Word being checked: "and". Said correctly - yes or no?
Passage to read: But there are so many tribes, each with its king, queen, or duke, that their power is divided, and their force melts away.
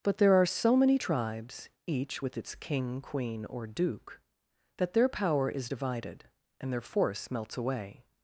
yes